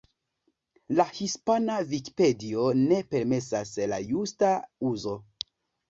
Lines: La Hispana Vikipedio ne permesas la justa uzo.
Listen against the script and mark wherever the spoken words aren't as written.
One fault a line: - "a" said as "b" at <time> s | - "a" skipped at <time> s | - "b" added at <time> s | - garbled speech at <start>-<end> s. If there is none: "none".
none